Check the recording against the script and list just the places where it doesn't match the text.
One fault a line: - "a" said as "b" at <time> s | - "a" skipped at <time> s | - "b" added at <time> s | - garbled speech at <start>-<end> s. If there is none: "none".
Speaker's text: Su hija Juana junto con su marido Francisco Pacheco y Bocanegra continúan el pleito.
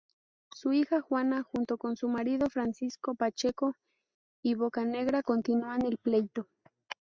none